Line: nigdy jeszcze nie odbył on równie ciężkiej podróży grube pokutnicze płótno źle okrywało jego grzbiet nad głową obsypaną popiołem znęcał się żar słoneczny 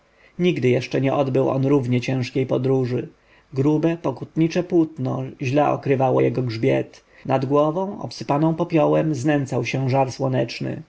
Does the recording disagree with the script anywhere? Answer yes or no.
no